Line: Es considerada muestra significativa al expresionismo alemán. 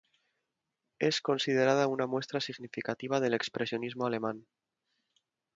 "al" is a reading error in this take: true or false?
true